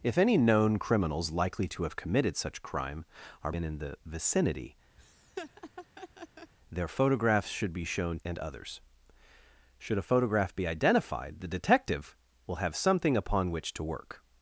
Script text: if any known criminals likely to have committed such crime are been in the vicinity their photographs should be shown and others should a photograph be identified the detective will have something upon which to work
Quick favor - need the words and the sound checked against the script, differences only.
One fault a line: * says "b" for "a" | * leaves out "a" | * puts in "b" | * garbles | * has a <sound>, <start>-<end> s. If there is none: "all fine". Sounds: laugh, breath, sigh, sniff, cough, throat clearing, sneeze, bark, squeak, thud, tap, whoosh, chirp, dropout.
* has a laugh, 5.0-6.5 s